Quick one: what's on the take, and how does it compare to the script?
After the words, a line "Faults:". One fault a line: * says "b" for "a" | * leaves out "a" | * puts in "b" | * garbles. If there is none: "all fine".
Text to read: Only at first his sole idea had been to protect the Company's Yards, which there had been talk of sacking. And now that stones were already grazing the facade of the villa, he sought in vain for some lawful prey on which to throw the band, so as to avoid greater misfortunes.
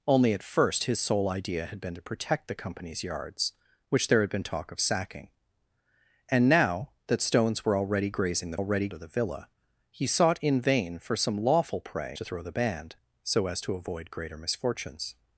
Only at first his sole idea had been to protect the Company's Yards, which there had been talk of sacking. And now that stones were already grazing the already of the villa, he sought in vain for some lawful prey to throw the band, so as to avoid greater misfortunes.
Faults:
* says "already" for "facade"
* leaves out "on which"